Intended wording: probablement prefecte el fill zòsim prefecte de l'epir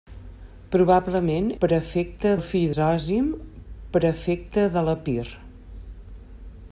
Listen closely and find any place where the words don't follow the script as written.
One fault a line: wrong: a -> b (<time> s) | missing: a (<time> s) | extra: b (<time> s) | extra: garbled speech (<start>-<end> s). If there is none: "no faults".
no faults